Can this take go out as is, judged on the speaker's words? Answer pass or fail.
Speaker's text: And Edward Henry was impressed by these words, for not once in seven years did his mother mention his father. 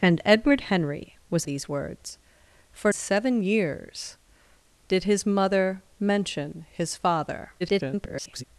fail